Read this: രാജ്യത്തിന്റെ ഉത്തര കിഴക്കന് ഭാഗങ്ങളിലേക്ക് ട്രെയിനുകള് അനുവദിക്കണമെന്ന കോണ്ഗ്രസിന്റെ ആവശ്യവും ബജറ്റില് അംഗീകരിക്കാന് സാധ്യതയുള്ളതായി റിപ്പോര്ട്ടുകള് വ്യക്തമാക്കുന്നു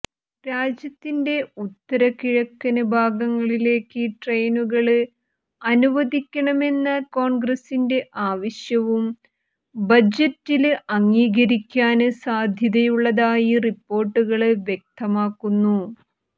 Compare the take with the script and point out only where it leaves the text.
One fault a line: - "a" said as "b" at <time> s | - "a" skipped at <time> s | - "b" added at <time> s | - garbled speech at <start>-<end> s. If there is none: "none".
none